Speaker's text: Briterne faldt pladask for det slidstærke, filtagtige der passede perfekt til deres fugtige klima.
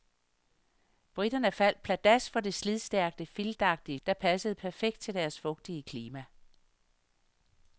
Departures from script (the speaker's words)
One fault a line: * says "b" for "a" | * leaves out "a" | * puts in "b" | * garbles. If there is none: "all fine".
all fine